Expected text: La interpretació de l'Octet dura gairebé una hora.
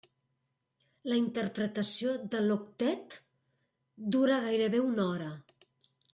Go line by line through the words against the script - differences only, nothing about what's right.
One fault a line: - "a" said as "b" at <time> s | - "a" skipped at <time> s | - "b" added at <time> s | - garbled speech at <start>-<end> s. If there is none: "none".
none